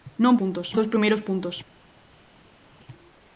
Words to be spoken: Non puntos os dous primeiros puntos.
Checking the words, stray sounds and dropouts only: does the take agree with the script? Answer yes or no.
yes